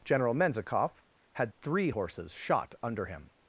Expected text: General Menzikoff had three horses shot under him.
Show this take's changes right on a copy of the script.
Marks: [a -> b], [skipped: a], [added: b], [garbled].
General Menzikoff had three horses shot under him.